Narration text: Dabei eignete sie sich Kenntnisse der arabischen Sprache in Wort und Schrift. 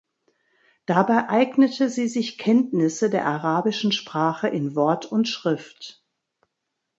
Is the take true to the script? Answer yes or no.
yes